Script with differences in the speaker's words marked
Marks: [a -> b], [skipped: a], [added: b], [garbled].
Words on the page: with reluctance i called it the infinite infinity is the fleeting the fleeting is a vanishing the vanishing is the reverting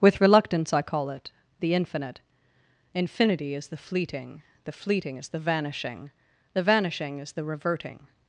with reluctance i [called -> call] it the infinite infinity is the fleeting the fleeting is [a -> the] vanishing the vanishing is the reverting